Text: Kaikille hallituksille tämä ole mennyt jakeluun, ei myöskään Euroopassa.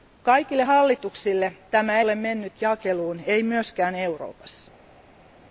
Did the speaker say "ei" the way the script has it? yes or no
yes